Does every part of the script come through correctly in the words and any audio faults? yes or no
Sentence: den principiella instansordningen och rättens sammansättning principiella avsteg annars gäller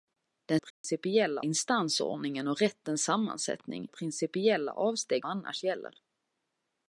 no